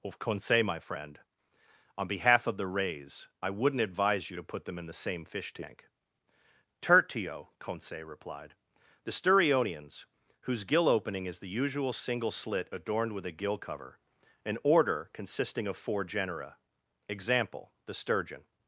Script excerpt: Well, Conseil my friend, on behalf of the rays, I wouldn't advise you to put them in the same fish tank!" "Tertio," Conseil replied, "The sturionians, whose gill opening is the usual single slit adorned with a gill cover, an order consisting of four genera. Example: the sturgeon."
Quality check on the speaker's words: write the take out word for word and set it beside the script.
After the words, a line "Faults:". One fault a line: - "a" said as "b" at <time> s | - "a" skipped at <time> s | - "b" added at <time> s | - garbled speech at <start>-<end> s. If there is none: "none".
Of, Conseil my friend, on behalf of the rays, I wouldn't advise you to put them in the same fish tank!" "Tertio," Conseil replied, "The sturionians, whose gill opening is the usual single slit adorned with a gill cover, an order consisting of four genera. Example: the sturgeon."
Faults:
- "Well" said as "Of" at 0.0 s